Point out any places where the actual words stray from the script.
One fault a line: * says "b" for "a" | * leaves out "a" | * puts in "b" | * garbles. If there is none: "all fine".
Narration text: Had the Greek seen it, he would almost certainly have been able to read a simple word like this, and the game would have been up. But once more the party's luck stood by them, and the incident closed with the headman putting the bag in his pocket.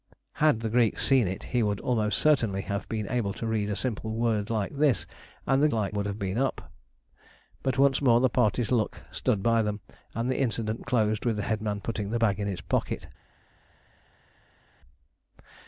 * says "like" for "game"